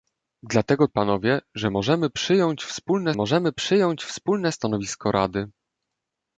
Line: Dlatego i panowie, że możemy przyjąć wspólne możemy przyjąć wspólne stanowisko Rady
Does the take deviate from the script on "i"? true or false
false